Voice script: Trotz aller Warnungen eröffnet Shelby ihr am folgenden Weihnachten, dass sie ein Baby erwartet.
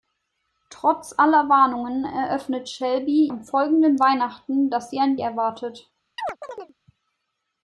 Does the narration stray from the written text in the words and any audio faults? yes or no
yes